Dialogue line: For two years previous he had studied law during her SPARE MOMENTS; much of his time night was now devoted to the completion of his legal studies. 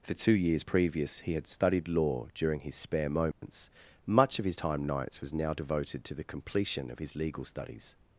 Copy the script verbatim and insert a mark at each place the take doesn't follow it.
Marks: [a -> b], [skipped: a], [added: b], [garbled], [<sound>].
For two years previous he had studied law during [her -> his] SPARE MOMENTS; [dropout] much of his time [night -> nights] was now devoted to the completion of his legal studies.